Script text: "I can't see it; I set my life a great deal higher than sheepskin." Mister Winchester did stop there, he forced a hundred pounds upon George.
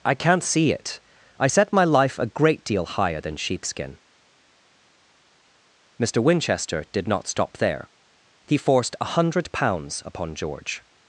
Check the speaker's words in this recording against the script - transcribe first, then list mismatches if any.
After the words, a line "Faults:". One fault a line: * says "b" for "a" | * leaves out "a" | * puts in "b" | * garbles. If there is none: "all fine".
"I can't see it; I set my life a great deal higher than sheepskin." Mister Winchester did not stop there, he forced a hundred pounds upon George.
Faults:
* puts in "not"